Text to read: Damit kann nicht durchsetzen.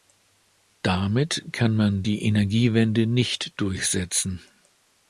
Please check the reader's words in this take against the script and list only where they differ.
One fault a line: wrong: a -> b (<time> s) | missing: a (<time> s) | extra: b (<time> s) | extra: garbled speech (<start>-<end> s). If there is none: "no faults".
extra: man die Energiewende (1.8 s)